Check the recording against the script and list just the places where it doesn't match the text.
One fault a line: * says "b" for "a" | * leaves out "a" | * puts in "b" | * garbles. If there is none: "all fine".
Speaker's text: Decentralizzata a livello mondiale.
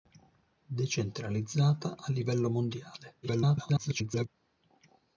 * garbles